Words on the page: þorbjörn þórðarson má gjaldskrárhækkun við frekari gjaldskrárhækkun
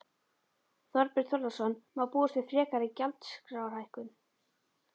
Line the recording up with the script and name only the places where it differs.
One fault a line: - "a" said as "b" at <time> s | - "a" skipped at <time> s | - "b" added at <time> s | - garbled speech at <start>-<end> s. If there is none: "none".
- "gjaldskrárhækkun" said as "búast" at 2.1 s